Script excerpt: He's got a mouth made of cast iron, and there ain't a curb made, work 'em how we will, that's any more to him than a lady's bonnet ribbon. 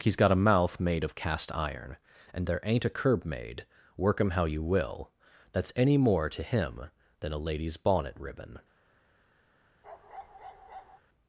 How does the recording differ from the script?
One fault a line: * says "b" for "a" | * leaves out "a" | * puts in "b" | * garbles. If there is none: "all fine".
* says "you" for "we"